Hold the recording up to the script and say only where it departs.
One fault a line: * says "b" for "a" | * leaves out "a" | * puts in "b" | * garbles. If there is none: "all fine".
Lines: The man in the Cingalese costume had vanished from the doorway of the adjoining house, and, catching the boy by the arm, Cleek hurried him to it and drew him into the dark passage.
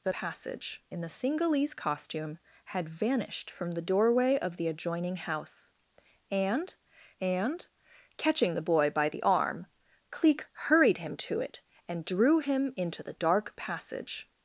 * says "passage" for "man"
* puts in "and"